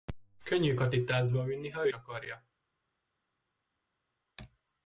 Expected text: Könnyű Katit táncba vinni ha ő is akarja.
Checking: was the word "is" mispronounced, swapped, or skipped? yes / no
yes